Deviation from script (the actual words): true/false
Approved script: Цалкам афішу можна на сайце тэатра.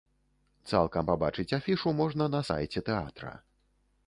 true